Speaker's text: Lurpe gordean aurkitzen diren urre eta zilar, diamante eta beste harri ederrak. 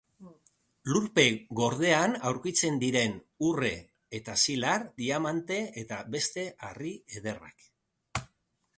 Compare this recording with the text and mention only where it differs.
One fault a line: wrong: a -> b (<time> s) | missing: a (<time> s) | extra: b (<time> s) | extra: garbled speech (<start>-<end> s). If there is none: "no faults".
no faults